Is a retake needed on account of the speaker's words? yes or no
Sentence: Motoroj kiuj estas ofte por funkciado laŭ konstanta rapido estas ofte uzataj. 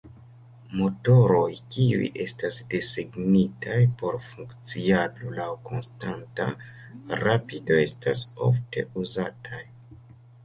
yes